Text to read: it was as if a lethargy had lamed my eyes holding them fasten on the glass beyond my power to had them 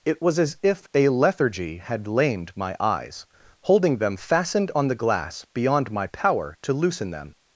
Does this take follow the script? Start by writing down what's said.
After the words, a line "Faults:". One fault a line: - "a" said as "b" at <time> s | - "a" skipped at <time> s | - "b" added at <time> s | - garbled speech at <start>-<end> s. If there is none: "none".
it was as if a lethargy had lamed my eyes holding them fastened on the glass beyond my power to loosen them
Faults:
- "fasten" said as "fastened" at 4.2 s
- "had" said as "loosen" at 6.7 s